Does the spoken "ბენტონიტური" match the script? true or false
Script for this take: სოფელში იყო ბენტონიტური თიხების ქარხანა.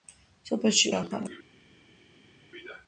false